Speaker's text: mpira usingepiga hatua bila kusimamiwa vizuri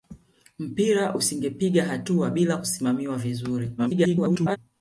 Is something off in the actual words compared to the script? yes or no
yes